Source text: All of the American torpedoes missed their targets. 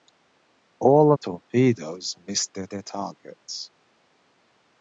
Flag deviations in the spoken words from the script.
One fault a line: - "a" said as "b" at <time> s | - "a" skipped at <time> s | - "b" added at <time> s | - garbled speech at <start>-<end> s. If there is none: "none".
- "of the American" skipped at 1.1 s
- "their" added at 2.7 s